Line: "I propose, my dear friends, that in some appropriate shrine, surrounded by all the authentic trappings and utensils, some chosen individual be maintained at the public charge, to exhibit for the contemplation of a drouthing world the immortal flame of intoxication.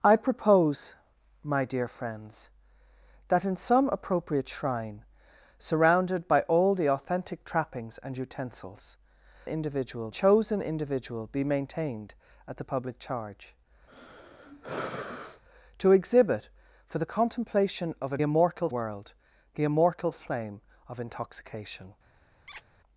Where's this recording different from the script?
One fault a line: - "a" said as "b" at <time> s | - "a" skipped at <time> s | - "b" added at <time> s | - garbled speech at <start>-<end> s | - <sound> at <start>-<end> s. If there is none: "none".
- "some" said as "individual" at 9.4 s
- sigh at 13.9-15.4 s
- "drouthing" said as "immortal" at 18.2 s
- squeak at 22.5-22.6 s